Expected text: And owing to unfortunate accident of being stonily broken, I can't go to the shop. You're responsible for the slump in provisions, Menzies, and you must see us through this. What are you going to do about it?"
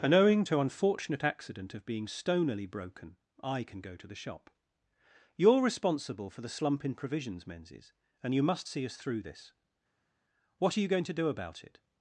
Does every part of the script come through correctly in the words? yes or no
no